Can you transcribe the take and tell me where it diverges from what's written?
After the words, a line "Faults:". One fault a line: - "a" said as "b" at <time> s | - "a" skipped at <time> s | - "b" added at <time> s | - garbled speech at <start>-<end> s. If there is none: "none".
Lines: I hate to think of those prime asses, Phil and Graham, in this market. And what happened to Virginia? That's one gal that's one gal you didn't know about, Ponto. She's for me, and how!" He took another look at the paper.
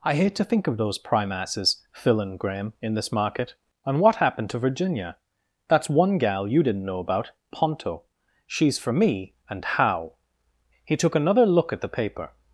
I hate to think of those prime asses, Phil and Graham, in this market. And what happened to Virginia? That's one gal you didn't know about, Ponto. She's for me, and how!" He took another look at the paper.
Faults:
- "that's one gal" skipped at 6.5 s